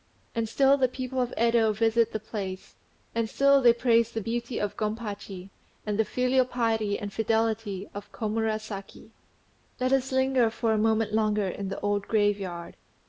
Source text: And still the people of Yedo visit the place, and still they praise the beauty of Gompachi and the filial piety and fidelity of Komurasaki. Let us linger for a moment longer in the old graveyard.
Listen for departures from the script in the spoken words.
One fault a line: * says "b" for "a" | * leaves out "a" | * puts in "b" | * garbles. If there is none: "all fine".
all fine